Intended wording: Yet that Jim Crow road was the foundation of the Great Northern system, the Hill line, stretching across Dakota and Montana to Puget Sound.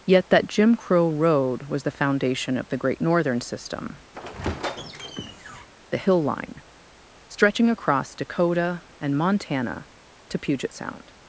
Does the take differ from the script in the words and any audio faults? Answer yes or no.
yes